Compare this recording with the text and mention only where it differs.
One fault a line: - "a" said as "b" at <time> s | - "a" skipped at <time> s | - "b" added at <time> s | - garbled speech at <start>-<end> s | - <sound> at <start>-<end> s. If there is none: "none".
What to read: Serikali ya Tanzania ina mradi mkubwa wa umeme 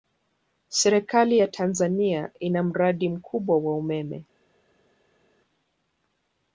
none